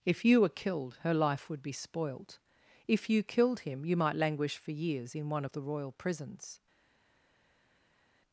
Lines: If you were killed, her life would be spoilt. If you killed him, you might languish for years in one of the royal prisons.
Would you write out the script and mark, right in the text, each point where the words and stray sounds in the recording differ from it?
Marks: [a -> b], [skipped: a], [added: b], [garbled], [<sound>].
If you were killed, her life would be spoilt. If you killed him, you might languish for years in one of the royal prisons.